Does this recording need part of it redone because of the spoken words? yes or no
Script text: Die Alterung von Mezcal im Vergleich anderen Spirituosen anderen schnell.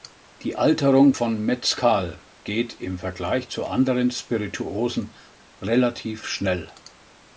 yes